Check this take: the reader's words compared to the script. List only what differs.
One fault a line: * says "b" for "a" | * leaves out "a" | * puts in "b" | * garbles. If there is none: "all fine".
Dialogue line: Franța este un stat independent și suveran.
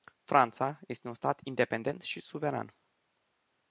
all fine